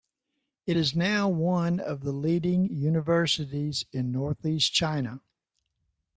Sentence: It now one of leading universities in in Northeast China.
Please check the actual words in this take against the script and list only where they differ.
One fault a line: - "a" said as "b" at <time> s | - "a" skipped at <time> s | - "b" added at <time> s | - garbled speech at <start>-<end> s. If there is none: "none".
- "is" added at 0.8 s
- "the" added at 2.0 s
- "in" skipped at 4.1 s